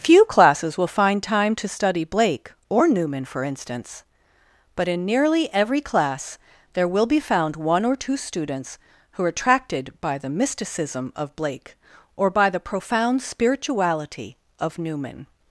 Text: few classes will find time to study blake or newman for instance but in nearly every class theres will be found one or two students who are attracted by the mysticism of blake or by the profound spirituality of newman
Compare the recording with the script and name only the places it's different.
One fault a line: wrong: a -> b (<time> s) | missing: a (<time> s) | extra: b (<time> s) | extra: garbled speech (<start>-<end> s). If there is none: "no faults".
wrong: theres -> there (6.7 s)